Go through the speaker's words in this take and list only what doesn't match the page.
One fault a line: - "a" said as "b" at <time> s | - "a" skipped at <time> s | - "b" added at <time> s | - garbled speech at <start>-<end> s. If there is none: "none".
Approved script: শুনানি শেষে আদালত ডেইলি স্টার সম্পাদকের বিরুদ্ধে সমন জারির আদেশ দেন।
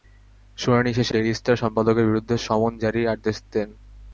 - "আদালত" skipped at 1.1 s